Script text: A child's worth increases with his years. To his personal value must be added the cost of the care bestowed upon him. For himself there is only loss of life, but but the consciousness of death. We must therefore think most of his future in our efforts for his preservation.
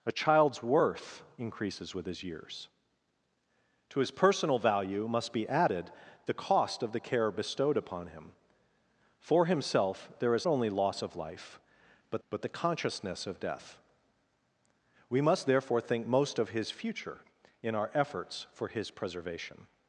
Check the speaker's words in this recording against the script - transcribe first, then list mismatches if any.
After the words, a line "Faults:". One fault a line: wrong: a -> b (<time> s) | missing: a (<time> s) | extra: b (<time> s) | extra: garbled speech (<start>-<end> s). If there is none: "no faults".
A child's worth increases with his years. To his personal value must be added the cost of the care bestowed upon him. For himself there is only loss of life, but but the consciousness of death. We must therefore think most of his future in our efforts for his preservation.
Faults:
no faults